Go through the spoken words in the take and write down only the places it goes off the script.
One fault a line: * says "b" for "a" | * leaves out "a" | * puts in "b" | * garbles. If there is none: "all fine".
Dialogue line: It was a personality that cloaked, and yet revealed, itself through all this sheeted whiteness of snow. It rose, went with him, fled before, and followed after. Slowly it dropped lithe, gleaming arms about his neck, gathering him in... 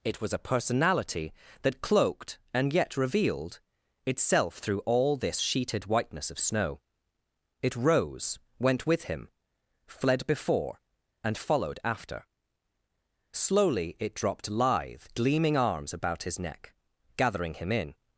all fine